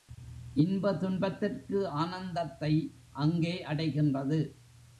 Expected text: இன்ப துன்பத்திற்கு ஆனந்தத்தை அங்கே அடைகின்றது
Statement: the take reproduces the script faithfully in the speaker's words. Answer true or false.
true